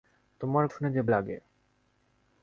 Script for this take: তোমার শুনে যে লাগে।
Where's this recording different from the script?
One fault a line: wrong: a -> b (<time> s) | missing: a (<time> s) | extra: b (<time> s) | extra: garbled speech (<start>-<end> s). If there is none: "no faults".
no faults